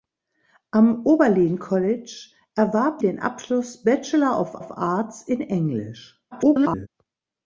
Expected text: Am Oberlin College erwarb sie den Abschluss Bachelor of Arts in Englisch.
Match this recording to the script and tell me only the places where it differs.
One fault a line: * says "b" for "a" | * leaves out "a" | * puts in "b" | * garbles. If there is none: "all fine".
* leaves out "sie"
* puts in "of"
* garbles